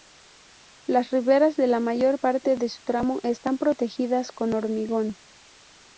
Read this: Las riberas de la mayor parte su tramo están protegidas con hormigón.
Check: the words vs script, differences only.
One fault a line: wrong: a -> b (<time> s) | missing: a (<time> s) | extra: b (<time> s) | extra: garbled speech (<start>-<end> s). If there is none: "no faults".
extra: de (2.6 s)